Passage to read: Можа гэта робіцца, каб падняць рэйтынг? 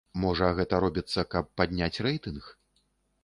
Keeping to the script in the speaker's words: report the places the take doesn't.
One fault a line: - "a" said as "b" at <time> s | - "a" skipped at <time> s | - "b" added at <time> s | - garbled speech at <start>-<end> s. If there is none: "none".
none